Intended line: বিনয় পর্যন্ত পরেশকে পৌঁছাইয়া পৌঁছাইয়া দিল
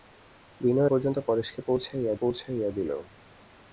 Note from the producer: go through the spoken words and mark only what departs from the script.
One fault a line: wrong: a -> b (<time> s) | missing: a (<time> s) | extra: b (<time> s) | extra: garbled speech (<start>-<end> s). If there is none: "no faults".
no faults